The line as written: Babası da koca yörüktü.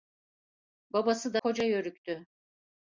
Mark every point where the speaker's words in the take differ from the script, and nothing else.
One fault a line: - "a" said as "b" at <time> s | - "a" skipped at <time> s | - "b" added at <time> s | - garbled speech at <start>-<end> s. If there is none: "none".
none